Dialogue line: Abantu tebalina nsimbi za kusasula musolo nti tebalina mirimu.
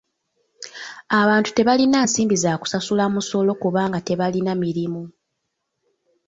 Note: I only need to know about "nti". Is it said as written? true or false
false